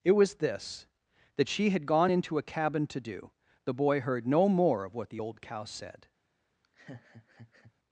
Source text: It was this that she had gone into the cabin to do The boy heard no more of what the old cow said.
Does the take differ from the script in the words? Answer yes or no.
yes